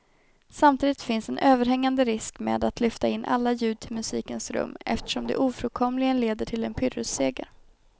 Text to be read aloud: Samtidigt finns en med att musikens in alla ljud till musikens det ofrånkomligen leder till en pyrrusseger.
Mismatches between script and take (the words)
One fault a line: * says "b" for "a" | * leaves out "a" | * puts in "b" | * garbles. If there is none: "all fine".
* puts in "överhängande risk"
* says "lyfta" for "musikens"
* puts in "rum eftersom"